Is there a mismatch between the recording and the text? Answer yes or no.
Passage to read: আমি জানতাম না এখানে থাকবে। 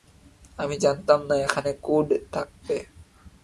yes